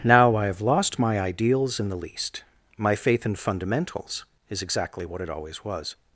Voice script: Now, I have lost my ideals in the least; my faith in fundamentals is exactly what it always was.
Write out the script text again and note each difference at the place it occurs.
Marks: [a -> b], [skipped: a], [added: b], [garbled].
Now, I have lost my ideals in the least; my faith in fundamentals is exactly what it always was.